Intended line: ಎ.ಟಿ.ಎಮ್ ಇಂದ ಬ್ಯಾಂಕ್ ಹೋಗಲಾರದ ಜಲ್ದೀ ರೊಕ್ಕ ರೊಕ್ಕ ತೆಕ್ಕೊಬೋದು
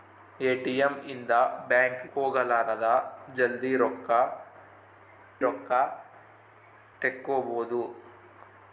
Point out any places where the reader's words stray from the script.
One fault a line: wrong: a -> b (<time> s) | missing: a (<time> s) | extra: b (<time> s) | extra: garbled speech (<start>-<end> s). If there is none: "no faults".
no faults